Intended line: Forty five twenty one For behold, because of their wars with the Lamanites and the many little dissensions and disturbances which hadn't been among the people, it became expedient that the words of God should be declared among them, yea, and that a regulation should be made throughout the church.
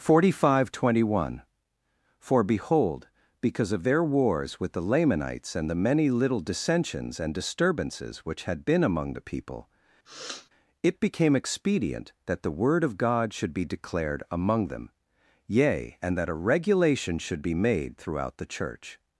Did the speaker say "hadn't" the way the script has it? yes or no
no